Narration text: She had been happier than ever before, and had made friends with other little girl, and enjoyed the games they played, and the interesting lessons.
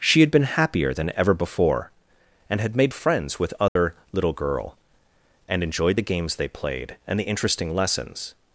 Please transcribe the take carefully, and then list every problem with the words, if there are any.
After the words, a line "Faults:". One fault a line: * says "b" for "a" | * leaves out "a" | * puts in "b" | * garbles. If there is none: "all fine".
She had been happier than ever before, and had made friends with other little girl, and enjoyed the games they played, and the interesting lessons.
Faults:
all fine